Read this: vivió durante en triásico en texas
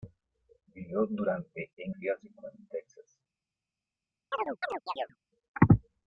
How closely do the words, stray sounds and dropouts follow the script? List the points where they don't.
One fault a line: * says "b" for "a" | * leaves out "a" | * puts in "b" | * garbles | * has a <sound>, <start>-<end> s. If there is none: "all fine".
* has a chirp, 4.3-5.2 s